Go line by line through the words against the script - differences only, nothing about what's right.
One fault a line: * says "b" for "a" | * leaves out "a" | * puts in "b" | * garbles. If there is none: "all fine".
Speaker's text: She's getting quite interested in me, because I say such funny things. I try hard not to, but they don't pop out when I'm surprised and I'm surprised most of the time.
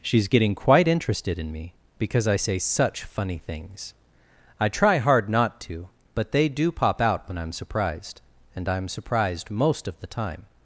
* says "do" for "don't"